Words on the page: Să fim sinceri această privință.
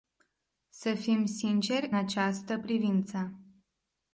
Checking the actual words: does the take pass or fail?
pass